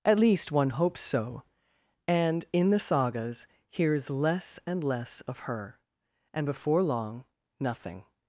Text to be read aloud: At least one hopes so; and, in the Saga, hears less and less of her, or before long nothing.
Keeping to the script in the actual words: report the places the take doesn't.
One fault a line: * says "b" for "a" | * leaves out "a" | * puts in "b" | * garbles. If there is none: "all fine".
* says "Sagas" for "Saga"
* says "and" for "or"